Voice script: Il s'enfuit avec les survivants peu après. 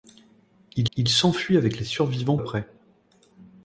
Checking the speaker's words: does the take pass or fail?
fail